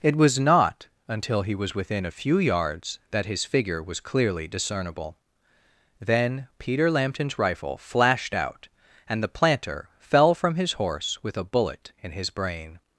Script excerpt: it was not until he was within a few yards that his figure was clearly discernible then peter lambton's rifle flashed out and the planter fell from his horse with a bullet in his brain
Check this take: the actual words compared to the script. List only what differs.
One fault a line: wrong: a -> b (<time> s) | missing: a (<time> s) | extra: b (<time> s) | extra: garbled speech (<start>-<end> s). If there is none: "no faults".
no faults